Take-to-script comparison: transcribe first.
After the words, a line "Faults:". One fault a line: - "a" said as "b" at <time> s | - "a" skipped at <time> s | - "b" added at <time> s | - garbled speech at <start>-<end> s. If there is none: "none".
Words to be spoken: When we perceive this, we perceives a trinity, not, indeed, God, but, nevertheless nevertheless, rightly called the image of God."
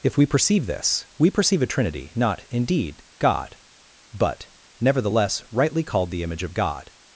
If we perceive this, we perceive a trinity, not, indeed, God, but, nevertheless, rightly called the image of God."
Faults:
- "When" said as "If" at 0.0 s
- "perceives" said as "perceive" at 1.3 s
- "nevertheless" skipped at 5.4 s